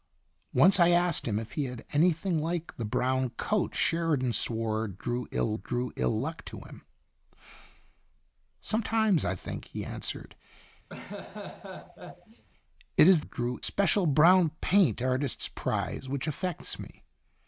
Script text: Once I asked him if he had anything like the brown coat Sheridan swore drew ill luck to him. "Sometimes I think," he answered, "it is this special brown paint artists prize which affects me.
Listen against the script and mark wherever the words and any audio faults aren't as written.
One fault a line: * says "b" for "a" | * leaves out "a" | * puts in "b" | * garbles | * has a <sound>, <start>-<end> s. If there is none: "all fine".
* puts in "drew ill"
* has a laugh, 10.9-12.4 s
* says "drew" for "this"